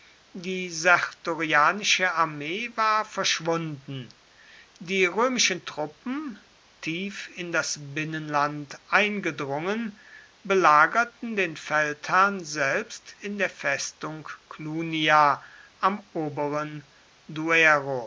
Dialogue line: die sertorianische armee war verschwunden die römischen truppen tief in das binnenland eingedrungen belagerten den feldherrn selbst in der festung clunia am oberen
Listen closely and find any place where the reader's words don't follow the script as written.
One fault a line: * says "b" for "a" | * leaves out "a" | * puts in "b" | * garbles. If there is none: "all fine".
all fine